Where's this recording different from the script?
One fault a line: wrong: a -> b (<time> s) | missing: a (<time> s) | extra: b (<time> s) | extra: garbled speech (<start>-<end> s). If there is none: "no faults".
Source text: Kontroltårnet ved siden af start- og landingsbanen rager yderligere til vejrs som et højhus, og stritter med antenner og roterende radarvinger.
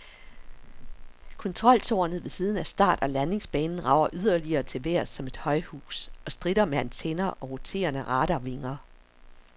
no faults